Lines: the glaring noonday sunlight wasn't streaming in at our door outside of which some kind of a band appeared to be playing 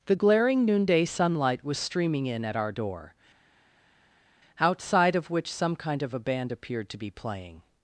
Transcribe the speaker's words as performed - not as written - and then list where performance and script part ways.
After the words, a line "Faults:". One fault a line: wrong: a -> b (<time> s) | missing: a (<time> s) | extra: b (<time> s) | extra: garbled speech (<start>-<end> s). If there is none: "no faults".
the glaring noonday sunlight was streaming in at our door outside of which some kind of a band appeared to be playing
Faults:
wrong: wasn't -> was (1.6 s)